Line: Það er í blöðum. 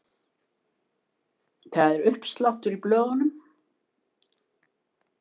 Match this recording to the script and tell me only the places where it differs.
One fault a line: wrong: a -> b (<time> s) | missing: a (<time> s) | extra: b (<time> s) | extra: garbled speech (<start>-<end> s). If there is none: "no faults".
extra: uppsláttur (2.1 s)